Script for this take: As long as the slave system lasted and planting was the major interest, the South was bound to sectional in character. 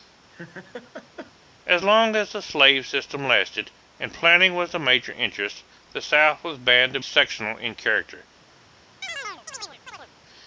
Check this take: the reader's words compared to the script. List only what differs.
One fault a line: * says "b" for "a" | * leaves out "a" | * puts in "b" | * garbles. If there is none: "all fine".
all fine